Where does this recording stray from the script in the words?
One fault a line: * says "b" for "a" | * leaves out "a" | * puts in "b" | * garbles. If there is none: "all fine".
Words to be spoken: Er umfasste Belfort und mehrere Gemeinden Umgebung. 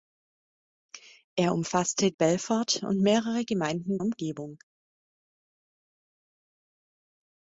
all fine